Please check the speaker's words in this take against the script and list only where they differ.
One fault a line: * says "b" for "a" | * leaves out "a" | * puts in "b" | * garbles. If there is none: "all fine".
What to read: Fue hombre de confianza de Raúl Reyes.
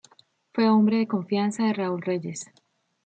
all fine